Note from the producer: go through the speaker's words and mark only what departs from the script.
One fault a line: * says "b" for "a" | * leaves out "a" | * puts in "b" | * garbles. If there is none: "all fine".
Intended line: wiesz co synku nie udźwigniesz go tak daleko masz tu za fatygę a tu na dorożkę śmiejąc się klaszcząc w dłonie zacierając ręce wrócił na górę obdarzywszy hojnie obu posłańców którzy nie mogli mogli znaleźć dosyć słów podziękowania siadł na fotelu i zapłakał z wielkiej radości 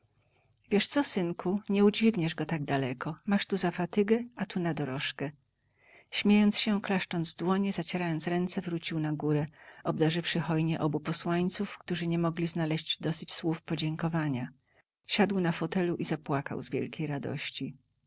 * leaves out "mogli"